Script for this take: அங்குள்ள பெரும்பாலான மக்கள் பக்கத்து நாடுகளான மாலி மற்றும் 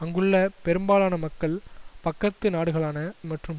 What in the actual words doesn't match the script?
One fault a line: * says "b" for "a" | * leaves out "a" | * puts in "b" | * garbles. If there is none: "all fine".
* leaves out "மாலி"